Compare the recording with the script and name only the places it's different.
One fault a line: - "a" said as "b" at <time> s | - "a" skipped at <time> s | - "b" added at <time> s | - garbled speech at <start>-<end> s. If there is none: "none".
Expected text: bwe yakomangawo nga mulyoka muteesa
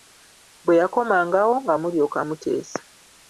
none